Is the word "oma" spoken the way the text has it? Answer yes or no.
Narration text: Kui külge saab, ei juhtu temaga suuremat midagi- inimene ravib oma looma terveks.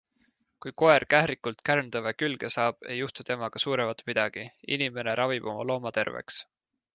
yes